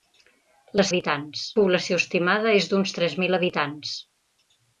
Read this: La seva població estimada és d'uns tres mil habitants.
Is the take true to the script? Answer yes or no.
no